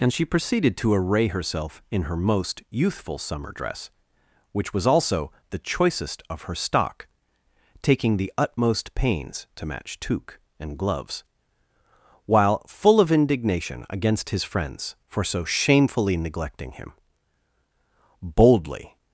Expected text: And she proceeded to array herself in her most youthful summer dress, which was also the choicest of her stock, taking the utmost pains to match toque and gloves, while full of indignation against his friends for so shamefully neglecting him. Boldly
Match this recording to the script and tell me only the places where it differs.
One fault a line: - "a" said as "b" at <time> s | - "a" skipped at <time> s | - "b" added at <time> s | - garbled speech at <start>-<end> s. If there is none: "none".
none